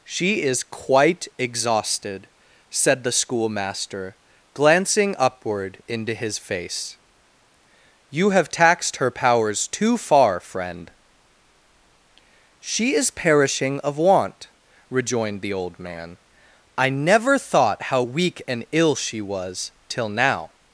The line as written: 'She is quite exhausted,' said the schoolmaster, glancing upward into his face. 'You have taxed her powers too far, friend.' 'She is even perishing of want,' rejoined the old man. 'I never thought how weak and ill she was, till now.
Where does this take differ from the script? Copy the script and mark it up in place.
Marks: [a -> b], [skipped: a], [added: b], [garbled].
'She is quite exhausted,' said the schoolmaster, glancing upward into his face. 'You have taxed her powers too far, friend.' 'She is [skipped: even] perishing of want,' rejoined the old man. 'I never thought how weak and ill she was, till now.